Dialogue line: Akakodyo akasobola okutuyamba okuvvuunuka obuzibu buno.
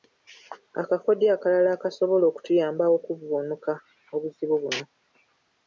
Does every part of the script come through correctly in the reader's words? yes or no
no